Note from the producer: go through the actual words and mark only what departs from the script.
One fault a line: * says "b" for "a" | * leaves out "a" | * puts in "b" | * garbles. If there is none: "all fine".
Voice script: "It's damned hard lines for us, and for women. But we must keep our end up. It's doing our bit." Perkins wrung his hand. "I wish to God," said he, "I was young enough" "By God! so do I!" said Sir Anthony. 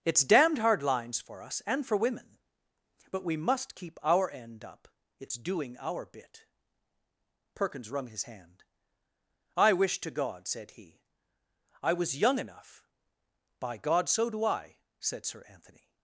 all fine